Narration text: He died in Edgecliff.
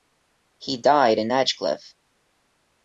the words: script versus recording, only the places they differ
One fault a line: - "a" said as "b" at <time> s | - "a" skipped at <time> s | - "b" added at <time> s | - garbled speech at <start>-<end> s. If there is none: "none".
none